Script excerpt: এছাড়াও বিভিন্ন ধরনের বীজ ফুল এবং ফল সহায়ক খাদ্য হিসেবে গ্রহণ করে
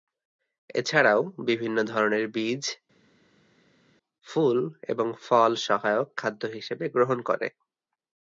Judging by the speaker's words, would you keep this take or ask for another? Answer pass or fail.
pass